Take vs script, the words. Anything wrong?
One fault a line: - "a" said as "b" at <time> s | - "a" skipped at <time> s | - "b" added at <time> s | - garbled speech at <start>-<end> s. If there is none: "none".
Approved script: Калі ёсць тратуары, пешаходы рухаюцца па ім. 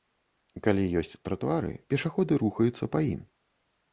none